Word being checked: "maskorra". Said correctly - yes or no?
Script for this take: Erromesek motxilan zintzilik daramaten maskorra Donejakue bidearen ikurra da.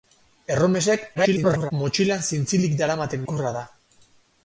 no